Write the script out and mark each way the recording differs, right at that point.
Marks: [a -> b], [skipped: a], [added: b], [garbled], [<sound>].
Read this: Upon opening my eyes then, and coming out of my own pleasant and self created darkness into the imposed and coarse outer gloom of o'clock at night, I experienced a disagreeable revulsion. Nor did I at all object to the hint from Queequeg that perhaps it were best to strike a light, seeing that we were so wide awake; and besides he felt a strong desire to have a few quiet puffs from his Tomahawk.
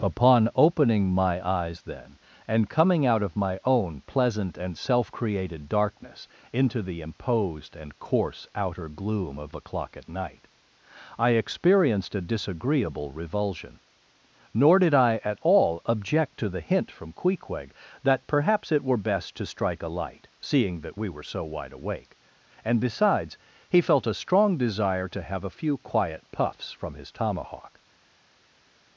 Upon opening my eyes then, and coming out of my own pleasant and self created darkness into the imposed and coarse outer gloom of o'clock at night, I experienced a disagreeable revulsion. Nor did I at all object to the hint from Queequeg that perhaps it were best to strike a light, seeing that we were so wide awake; and besides he felt a strong desire to have a few quiet puffs from his Tomahawk.